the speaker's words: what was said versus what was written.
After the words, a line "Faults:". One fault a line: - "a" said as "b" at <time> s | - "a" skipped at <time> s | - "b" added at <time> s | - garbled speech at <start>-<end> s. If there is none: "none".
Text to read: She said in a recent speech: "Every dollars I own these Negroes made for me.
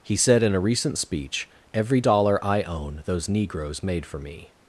He said in a recent speech: "Every dollar I own those Negroes made for me.
Faults:
- "She" said as "He" at 0.0 s
- "dollars" said as "dollar" at 2.0 s
- "these" said as "those" at 3.1 s